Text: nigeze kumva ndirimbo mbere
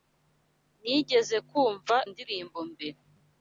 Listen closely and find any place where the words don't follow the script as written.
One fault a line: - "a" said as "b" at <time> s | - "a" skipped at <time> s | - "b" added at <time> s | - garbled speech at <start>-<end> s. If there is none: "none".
none